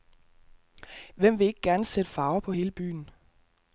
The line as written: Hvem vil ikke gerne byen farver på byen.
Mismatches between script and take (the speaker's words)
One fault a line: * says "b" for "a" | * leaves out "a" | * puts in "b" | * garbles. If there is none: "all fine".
* says "sætte" for "byen"
* puts in "hele"